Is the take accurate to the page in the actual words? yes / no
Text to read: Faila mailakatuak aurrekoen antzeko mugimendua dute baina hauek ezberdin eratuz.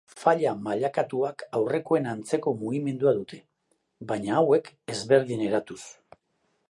yes